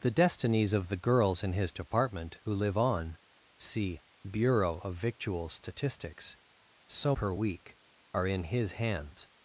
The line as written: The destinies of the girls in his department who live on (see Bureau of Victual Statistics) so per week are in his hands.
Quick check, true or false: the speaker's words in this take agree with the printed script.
true